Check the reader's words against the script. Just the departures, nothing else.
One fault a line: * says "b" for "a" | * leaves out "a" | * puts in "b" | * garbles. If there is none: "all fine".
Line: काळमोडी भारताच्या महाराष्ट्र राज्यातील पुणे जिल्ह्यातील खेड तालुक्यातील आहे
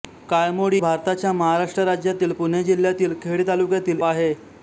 all fine